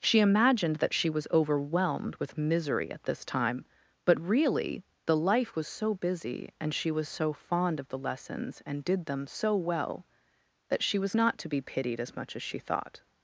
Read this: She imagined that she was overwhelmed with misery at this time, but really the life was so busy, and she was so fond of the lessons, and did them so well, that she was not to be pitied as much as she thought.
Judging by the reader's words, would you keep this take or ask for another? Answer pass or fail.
pass